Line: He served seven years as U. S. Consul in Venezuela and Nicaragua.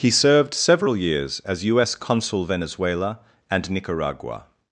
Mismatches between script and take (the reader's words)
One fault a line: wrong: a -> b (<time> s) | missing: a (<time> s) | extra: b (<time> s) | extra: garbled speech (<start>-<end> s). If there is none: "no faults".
wrong: seven -> several (0.6 s)
missing: in (2.5 s)